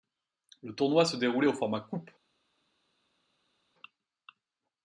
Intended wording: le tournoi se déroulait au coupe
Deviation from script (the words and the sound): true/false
true